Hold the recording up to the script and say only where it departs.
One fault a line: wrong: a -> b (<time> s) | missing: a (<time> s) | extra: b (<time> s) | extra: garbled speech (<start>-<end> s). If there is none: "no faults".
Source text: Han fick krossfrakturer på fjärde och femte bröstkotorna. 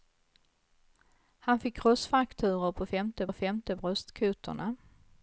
wrong: fjärde -> femte (2.9 s)